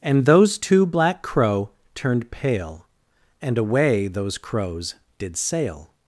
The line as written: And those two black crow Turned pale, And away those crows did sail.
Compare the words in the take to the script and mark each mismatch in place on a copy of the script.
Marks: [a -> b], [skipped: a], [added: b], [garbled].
And those two black crow Turned pale, And away those crows did sail.